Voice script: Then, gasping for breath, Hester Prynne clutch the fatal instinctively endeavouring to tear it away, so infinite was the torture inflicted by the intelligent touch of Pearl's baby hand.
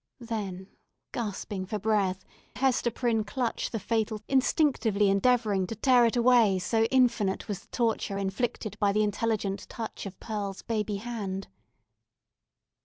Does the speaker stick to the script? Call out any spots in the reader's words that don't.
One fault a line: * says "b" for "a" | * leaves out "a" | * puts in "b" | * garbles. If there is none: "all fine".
all fine